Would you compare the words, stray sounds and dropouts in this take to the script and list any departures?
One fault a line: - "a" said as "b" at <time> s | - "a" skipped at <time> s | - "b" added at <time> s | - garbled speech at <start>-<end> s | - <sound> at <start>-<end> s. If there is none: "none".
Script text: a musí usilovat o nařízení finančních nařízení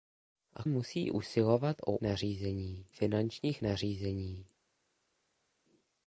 none